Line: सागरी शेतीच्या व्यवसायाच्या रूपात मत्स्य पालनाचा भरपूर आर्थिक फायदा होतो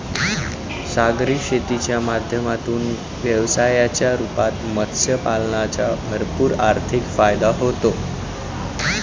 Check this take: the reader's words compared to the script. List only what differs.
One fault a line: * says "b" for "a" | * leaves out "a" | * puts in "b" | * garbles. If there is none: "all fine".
* puts in "माध्यमातून"